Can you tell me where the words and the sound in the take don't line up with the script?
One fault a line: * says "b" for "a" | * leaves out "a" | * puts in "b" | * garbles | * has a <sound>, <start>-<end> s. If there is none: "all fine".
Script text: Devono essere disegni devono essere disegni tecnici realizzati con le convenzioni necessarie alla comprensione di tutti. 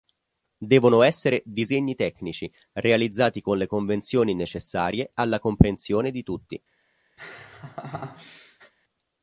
* leaves out "devono essere disegni"
* has a laugh, 7.2-8.7 s